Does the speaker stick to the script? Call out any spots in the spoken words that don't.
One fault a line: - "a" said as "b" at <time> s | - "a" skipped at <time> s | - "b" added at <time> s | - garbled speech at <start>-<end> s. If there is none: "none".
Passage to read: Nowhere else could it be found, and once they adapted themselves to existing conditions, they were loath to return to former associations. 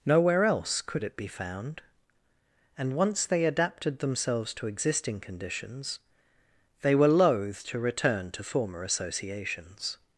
none